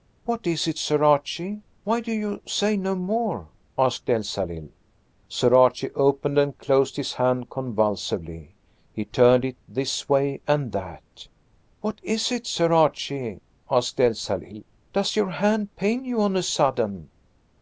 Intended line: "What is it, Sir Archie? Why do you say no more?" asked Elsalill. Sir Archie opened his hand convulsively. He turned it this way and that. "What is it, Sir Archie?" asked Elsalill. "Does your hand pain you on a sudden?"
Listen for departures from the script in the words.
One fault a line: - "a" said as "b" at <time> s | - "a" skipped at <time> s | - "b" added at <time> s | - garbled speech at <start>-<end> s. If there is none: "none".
- "and closed" added at 6.4 s